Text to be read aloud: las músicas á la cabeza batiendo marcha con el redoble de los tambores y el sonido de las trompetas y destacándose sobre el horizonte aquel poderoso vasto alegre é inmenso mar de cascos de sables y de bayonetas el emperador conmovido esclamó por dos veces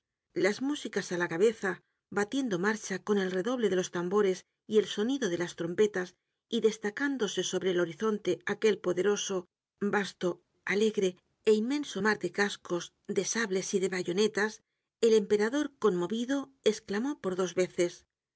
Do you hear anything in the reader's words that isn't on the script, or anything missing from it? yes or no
no